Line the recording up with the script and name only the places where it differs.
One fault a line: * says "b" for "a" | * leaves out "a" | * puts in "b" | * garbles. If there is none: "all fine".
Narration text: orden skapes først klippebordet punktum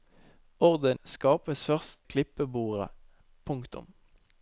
all fine